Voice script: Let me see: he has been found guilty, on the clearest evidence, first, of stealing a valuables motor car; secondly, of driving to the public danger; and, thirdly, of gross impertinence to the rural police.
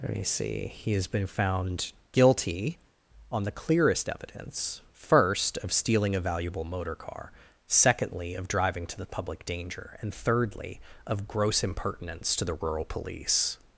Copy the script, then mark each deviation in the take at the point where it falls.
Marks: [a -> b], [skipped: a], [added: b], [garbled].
Let me see: he has been found guilty, on the clearest evidence, first, of stealing a [valuables -> valuable] motor car; secondly, of driving to the public danger; and, thirdly, of gross impertinence to the rural police.